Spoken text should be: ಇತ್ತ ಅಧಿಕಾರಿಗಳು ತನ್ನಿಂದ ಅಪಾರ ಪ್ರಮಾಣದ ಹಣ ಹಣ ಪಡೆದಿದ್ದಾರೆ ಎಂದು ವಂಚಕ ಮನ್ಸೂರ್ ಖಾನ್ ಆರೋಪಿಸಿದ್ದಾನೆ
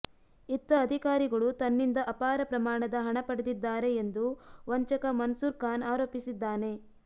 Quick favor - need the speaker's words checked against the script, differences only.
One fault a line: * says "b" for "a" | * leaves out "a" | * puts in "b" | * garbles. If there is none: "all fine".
* leaves out "ಹಣ"